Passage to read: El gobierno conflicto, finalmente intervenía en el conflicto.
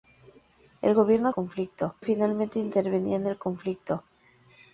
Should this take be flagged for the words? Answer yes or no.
no